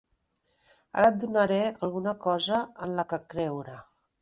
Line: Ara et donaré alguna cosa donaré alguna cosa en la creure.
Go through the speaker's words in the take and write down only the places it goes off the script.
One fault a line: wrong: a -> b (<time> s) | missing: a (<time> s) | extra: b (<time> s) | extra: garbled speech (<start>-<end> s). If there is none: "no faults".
missing: donaré alguna cosa (2.6 s)
extra: que (3.1 s)